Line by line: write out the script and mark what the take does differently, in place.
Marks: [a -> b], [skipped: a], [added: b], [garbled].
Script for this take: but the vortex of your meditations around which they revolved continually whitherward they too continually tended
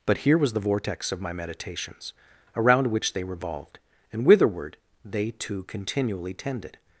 but [added: here was] the vortex of [your -> my] meditations around which they revolved [continually -> and] whitherward they too continually tended